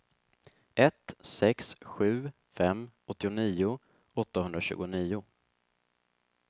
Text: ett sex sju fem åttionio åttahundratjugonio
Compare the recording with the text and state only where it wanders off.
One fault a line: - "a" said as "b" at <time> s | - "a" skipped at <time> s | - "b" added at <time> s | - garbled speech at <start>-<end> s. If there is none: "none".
none